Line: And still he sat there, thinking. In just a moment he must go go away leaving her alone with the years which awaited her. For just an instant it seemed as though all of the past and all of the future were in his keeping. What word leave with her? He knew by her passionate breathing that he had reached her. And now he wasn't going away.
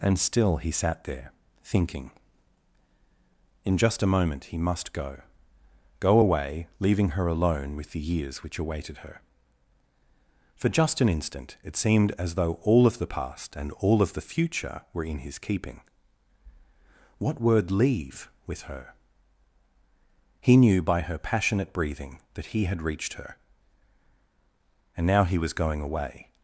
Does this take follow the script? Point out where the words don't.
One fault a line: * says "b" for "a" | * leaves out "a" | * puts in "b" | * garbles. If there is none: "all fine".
* says "was" for "wasn't"